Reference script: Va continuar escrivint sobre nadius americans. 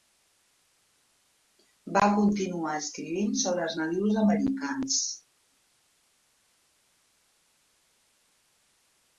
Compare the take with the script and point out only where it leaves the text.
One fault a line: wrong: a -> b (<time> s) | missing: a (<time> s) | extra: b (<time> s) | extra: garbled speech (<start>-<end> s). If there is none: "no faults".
extra: els (3.7 s)